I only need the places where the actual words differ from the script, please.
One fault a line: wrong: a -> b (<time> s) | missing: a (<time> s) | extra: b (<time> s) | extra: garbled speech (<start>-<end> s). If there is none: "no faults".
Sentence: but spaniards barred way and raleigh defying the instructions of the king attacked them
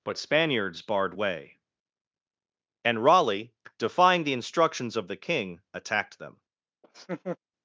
no faults